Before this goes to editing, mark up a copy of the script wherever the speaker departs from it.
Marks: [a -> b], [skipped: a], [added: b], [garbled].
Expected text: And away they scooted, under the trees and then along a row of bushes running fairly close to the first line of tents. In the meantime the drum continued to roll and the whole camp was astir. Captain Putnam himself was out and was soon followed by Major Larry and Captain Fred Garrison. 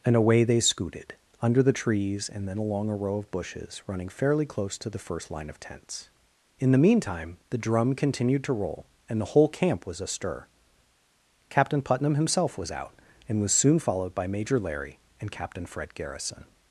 And away they scooted, under the trees and then along a row of bushes running fairly close to the first line of tents. In the meantime the drum continued to roll and the whole camp was astir. Captain Putnam himself was out and was soon followed by Major Larry and Captain Fred Garrison.